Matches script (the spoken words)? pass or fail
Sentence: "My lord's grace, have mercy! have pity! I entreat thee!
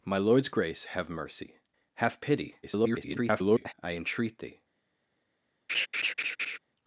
fail